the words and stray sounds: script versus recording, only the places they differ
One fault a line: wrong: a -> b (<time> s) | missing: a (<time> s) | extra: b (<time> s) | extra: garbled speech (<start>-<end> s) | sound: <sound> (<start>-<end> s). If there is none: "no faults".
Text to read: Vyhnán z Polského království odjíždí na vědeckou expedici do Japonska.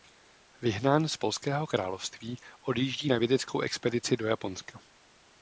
no faults